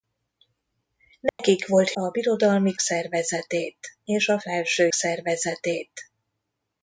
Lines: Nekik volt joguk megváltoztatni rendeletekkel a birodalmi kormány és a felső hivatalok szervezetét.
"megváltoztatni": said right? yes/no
no